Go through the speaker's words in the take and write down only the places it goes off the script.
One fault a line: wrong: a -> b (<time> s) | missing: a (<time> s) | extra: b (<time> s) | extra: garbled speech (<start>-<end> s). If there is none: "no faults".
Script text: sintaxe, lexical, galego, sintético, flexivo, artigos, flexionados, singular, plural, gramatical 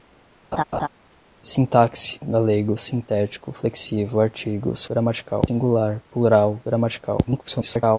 missing: lexical (2.2 s)
wrong: flexionados -> gramatical (4.9 s)
extra: garbled speech (7.2-8.0 s)